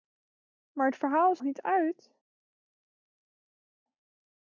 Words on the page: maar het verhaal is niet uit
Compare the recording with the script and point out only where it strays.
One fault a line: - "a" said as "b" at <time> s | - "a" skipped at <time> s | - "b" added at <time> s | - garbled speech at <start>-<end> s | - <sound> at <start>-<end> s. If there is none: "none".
none